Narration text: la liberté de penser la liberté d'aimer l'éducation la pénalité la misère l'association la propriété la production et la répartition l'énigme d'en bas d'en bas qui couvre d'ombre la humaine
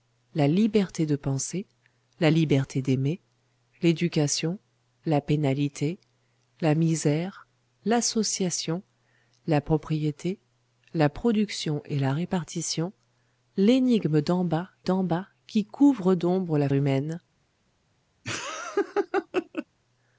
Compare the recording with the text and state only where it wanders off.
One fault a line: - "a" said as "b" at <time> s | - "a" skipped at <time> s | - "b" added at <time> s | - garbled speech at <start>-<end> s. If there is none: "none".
none